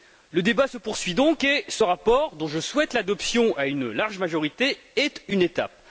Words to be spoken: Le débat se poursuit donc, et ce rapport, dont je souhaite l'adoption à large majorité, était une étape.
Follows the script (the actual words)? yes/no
no